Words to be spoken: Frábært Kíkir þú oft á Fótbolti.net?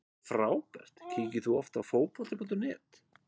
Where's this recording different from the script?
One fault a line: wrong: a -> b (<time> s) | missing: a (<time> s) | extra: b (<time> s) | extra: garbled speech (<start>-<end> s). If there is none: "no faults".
no faults